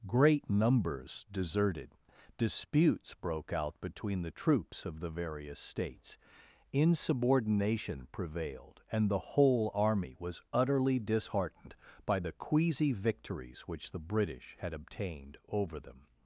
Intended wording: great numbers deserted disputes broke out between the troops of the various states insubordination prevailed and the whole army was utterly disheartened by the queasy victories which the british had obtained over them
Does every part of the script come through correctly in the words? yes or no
yes